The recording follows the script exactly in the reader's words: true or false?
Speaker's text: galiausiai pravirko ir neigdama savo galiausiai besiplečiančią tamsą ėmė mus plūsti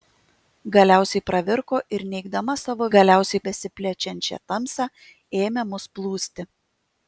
true